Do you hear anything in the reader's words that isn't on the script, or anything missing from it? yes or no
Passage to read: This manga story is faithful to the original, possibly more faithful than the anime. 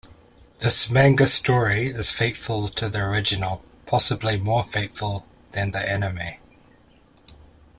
no